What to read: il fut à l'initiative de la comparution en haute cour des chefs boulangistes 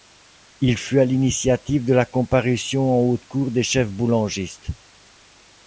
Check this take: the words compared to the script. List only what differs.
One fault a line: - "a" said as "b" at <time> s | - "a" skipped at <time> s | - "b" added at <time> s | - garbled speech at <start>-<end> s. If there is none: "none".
none